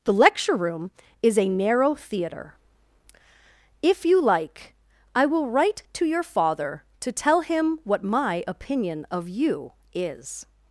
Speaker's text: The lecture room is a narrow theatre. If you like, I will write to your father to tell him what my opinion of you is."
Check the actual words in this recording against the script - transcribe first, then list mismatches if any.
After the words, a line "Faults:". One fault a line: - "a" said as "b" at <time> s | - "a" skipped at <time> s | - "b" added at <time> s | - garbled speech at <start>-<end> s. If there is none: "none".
The lecture room is a narrow theatre. If you like, I will write to your father to tell him what my opinion of you is."
Faults:
none